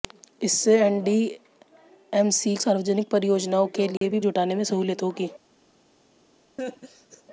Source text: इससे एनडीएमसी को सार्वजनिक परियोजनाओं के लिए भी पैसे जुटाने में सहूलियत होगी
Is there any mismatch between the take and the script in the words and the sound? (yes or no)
yes